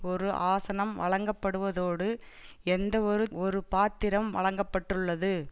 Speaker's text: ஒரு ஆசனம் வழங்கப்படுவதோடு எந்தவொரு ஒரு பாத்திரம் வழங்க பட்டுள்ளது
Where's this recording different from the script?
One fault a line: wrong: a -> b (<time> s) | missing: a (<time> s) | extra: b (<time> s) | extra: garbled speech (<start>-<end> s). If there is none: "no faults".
no faults